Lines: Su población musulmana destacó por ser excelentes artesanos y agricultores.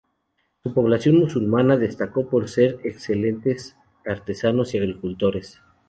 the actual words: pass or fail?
pass